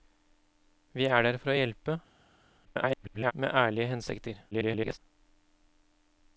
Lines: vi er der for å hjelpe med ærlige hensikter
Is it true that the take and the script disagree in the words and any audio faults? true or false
true